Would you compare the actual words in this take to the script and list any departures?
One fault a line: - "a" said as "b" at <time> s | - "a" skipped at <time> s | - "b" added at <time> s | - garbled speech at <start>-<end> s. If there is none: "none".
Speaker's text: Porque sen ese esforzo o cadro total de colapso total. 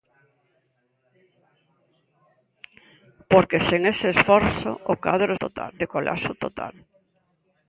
none